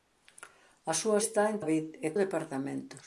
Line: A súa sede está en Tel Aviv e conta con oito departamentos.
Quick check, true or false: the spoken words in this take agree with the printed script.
false